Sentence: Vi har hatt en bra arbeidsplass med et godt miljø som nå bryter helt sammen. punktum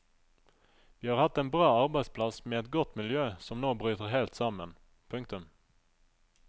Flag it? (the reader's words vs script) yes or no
no